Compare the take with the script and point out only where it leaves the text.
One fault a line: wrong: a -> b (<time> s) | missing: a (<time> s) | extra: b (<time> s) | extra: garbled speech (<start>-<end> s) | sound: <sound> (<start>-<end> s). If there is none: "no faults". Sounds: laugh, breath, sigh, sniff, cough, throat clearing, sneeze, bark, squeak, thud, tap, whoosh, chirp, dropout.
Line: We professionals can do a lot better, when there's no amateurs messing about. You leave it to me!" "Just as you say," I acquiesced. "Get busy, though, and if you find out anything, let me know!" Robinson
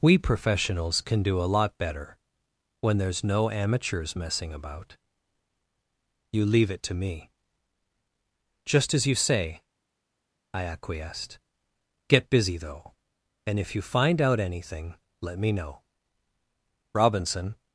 no faults